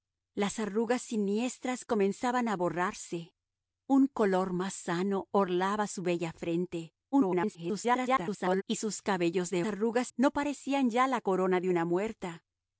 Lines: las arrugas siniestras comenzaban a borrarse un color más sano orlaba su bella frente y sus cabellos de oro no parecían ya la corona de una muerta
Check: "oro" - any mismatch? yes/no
yes